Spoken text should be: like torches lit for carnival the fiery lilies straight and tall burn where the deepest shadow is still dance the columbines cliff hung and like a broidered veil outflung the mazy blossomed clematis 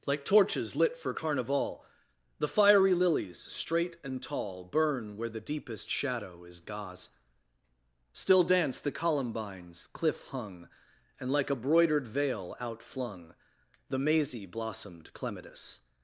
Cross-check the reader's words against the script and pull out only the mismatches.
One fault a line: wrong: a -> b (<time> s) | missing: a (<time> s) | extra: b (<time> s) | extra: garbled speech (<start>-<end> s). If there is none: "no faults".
extra: gauze (6.6 s)